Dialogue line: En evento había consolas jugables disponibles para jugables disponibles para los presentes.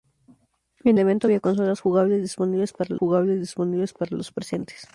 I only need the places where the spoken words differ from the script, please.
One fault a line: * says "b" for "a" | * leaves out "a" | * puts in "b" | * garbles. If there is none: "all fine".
all fine